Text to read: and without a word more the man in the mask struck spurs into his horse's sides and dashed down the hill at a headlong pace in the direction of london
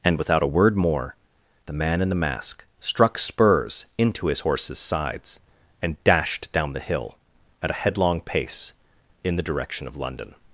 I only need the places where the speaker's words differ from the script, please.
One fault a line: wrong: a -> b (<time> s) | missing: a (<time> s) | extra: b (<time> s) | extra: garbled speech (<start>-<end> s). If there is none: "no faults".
no faults